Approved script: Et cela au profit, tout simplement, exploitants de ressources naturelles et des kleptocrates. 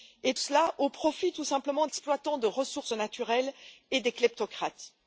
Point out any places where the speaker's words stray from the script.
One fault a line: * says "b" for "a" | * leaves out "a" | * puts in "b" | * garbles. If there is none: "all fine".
all fine